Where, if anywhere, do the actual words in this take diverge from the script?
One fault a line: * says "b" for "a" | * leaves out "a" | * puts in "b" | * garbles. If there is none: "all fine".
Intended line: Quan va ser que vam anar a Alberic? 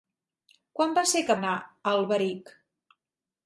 * leaves out "vam"